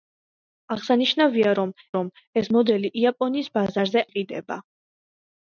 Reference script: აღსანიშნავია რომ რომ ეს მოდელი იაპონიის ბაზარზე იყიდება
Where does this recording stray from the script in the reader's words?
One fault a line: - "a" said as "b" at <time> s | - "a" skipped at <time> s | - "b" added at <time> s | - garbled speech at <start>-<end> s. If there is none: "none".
none